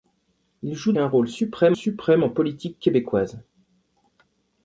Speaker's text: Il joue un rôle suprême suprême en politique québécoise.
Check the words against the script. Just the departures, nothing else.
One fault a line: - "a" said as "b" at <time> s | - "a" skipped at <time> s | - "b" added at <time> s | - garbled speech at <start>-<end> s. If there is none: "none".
none